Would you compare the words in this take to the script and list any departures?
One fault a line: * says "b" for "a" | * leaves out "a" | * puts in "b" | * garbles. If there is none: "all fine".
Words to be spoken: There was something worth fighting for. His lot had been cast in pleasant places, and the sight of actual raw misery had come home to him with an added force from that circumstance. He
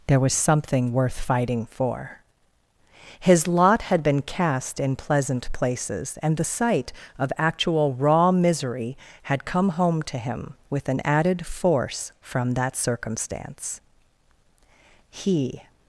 all fine